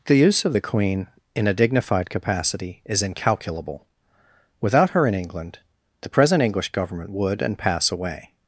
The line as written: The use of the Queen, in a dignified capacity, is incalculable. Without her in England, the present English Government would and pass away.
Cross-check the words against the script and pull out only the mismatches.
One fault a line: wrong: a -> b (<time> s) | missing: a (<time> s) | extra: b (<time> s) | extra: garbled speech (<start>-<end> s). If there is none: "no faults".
no faults